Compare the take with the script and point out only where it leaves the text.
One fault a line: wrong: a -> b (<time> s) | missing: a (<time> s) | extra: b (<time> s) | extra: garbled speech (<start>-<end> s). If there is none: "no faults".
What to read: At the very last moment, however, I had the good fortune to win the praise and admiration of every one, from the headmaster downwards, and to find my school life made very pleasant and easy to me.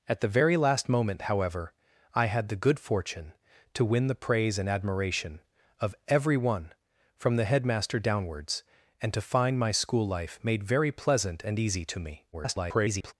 extra: garbled speech (12.3-13.1 s)